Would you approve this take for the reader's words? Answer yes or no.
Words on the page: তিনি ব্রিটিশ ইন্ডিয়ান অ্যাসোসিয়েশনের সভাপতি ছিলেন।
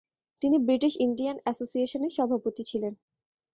yes